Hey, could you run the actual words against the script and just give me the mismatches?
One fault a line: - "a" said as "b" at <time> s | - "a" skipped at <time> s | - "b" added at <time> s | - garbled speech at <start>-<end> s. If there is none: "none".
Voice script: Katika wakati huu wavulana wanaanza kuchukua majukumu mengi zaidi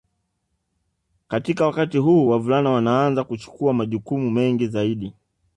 none